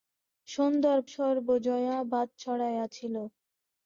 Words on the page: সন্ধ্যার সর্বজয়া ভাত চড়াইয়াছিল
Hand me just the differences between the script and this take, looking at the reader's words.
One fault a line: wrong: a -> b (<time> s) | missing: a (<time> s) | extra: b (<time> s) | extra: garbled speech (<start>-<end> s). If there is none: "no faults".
no faults